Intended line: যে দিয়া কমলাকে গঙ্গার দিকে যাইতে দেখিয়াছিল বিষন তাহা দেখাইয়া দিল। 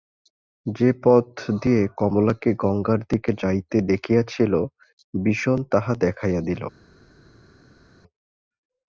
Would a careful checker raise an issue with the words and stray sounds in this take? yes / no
yes